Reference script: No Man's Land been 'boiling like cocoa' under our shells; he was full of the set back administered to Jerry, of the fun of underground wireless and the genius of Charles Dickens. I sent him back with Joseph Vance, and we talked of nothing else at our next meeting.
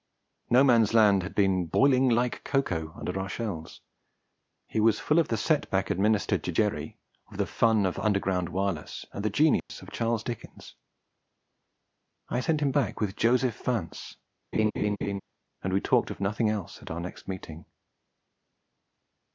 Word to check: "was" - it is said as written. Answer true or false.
true